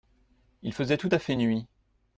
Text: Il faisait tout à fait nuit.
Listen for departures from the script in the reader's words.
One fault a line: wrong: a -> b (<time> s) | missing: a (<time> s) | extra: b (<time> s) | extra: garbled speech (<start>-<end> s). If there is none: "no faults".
no faults